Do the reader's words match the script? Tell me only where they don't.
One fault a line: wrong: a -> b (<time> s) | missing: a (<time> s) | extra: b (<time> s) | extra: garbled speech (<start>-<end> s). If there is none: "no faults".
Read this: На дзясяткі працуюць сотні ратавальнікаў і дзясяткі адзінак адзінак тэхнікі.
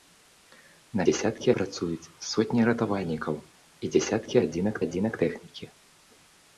no faults